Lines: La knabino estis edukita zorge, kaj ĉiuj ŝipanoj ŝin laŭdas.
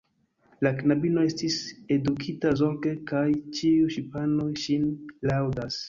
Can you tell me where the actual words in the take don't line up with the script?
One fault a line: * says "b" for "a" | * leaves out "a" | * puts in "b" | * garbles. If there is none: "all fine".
all fine